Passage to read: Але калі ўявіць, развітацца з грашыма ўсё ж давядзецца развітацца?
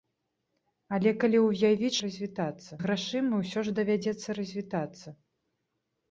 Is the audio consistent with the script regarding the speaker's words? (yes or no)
yes